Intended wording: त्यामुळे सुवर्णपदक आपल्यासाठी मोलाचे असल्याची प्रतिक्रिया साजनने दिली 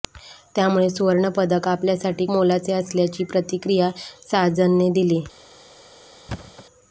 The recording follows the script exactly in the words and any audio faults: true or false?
false